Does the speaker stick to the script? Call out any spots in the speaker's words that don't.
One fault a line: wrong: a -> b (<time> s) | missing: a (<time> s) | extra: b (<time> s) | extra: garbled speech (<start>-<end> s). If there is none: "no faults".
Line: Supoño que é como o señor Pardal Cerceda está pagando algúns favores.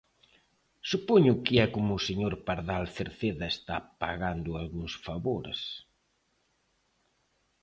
no faults